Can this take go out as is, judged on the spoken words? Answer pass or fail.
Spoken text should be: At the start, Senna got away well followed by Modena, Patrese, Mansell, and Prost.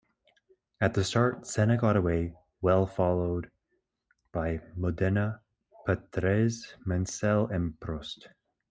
pass